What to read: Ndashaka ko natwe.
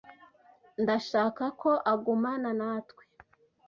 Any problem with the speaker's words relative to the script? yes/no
yes